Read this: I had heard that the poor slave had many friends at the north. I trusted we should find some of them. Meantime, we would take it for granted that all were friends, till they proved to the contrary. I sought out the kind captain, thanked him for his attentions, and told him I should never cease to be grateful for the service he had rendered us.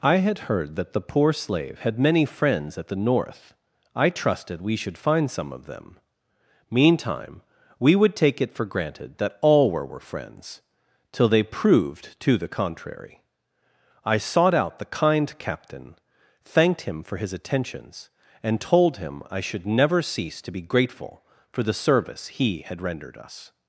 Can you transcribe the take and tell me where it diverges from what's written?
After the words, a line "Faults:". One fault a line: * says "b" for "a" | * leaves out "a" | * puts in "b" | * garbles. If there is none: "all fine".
I had heard that the poor slave had many friends at the north. I trusted we should find some of them. Meantime, we would take it for granted that all were were friends, till they proved to the contrary. I sought out the kind captain, thanked him for his attentions, and told him I should never cease to be grateful for the service he had rendered us.
Faults:
* puts in "were"